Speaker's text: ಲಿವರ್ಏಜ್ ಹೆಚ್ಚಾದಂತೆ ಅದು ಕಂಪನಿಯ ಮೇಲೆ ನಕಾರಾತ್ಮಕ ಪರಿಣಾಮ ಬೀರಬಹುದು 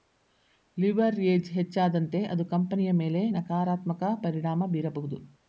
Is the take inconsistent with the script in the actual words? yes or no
no